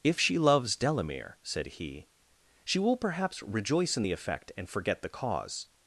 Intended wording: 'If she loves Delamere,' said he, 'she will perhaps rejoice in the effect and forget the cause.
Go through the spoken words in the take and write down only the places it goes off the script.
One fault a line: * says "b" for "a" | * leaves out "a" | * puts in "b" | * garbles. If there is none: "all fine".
all fine